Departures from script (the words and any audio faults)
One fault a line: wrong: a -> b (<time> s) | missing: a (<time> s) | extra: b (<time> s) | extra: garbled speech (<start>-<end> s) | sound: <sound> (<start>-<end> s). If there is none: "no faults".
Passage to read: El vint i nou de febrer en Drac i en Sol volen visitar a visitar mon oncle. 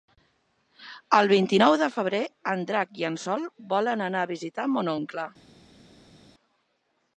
wrong: visitar -> anar (4.1 s)